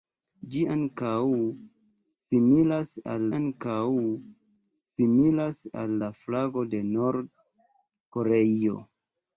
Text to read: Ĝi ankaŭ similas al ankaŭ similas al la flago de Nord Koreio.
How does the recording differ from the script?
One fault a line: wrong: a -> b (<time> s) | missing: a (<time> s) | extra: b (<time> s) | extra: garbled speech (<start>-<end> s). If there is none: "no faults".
no faults